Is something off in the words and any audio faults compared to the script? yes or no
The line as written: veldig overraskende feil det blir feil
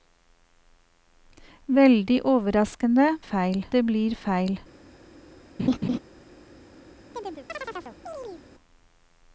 yes